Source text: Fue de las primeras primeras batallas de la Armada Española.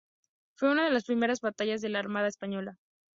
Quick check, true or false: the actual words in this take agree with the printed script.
false